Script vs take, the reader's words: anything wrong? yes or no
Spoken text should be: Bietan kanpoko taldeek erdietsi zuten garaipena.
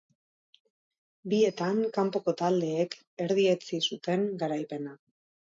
no